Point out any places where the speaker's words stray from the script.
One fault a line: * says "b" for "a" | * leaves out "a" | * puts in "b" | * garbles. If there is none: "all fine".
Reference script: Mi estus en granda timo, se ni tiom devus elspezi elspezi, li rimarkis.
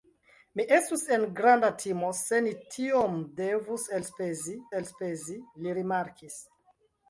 all fine